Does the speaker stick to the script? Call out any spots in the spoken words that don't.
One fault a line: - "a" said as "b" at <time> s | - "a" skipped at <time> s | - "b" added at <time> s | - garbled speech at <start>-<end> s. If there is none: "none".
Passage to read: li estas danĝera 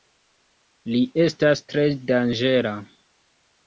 - "tre" added at 1.7 s